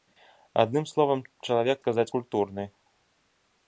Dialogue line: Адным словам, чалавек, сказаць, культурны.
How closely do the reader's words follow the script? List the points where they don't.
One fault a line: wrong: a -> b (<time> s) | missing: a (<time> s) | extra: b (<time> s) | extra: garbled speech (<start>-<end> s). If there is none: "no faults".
no faults